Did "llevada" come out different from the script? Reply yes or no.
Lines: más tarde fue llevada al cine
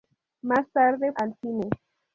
yes